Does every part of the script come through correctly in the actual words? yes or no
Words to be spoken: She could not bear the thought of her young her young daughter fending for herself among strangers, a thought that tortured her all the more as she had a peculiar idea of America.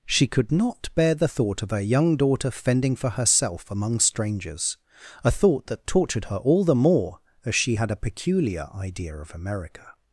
no